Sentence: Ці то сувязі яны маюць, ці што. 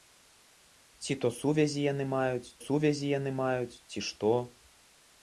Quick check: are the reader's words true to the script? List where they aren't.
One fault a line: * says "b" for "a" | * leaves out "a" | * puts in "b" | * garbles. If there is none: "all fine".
* puts in "сувязі яны маюць"